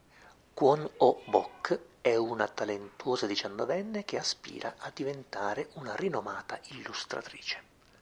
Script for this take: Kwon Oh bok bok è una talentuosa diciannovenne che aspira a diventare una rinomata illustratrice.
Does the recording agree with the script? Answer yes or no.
no